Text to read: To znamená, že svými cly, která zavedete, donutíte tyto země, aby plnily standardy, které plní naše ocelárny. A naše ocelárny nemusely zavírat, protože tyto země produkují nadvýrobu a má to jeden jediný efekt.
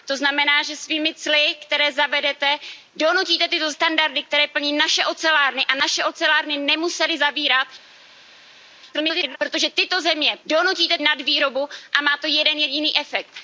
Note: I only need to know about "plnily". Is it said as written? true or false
false